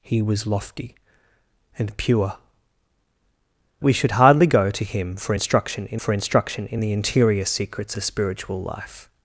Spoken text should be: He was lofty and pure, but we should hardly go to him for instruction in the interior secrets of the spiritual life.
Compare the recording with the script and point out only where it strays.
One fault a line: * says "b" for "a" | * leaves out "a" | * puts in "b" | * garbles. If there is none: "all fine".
* leaves out "but"
* puts in "for instruction in"
* leaves out "of"